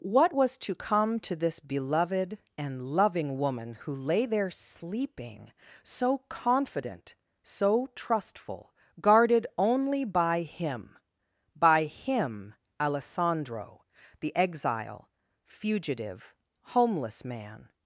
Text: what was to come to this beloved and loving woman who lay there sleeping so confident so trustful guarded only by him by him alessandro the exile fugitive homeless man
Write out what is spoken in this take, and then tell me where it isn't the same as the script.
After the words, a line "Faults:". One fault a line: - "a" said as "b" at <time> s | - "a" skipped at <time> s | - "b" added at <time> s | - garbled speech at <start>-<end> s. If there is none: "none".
what was to come to this beloved and loving woman who lay there sleeping so confident so trustful guarded only by him by him alessandro the exile fugitive homeless man
Faults:
none